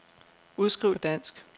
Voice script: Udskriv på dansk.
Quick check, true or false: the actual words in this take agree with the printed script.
true